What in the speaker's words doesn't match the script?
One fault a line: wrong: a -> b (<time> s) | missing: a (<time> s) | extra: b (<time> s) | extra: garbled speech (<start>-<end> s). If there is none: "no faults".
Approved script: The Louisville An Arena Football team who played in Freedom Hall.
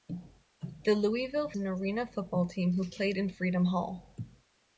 no faults